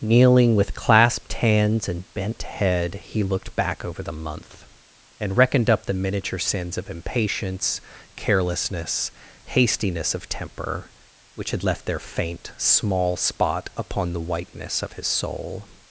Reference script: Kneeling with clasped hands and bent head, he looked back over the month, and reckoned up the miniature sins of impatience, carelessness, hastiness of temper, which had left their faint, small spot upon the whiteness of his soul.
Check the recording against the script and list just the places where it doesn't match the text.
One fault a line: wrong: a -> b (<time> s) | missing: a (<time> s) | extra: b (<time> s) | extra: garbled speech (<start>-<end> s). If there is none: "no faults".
no faults